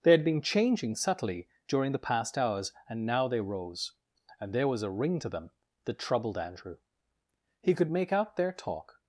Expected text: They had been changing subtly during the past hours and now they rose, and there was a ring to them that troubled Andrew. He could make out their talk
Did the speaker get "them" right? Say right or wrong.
right